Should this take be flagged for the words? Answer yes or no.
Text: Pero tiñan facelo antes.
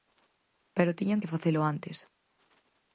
yes